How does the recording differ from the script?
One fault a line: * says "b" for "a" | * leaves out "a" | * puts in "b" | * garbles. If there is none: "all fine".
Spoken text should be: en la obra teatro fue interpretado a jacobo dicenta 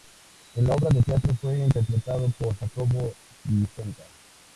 * puts in "de"
* says "por" for "a"